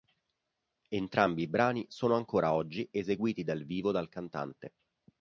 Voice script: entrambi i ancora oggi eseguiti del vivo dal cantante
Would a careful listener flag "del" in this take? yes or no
yes